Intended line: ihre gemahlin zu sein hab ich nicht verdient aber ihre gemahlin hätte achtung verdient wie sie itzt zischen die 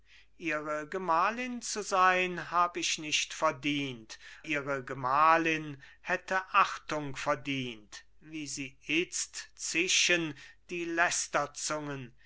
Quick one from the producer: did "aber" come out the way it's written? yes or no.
no